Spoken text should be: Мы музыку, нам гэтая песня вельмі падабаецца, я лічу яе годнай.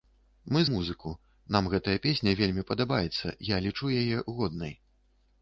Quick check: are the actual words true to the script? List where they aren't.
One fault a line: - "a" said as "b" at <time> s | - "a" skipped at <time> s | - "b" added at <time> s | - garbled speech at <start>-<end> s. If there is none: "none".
none